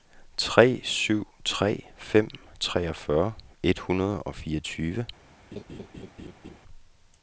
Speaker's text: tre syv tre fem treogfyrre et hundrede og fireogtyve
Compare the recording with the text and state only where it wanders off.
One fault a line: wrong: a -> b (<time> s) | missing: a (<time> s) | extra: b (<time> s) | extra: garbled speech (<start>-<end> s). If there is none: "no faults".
no faults